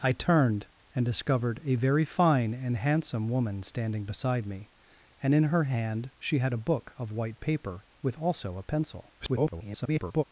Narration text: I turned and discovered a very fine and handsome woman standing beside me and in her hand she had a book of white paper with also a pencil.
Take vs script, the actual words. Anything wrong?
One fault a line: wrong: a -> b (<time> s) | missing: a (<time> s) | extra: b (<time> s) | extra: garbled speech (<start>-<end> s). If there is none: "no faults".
extra: garbled speech (9.2-10.2 s)